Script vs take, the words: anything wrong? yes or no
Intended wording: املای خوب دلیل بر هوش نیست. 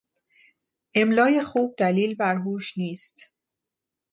no